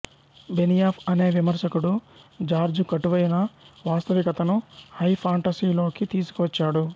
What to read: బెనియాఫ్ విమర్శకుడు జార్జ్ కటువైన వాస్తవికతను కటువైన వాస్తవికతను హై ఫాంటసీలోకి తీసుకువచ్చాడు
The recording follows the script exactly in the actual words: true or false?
false